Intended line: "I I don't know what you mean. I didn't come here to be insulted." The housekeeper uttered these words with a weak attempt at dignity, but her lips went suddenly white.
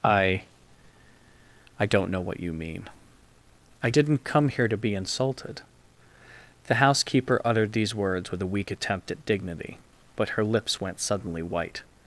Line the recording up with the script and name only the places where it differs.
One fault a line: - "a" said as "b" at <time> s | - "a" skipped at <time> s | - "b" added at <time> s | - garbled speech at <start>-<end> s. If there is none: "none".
none